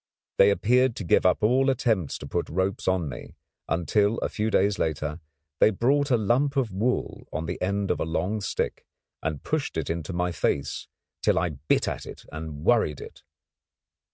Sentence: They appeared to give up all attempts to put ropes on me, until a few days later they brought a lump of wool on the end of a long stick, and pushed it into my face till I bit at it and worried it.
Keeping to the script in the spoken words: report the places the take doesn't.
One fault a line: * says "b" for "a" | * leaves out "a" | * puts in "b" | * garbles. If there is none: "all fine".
all fine